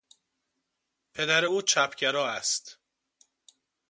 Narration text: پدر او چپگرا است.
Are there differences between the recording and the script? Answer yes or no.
no